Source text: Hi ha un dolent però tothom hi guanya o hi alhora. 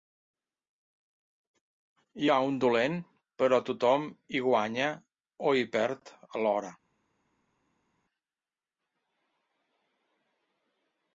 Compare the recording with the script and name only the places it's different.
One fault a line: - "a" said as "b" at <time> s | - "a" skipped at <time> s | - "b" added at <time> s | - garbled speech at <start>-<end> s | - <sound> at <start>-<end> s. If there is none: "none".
- "perd" added at 5.8 s